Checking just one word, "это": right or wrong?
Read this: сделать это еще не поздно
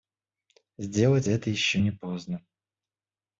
right